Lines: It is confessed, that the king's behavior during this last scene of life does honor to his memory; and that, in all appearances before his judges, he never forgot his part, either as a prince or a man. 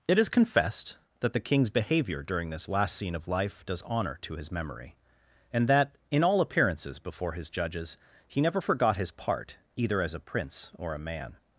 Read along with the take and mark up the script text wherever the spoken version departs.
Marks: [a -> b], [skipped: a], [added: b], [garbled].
It is confessed, that the king's behavior during this last scene of life does honor to his memory; and that, in all appearances before his judges, he never forgot his part, either as a prince or a man.